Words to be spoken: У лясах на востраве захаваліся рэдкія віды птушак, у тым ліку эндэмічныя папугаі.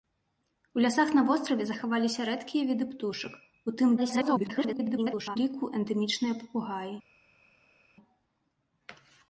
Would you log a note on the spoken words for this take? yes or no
yes